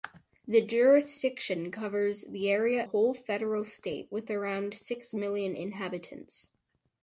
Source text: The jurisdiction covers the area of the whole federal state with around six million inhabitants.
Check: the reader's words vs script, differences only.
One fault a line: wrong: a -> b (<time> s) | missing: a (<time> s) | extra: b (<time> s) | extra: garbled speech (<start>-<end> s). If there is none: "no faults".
missing: of the (2.9 s)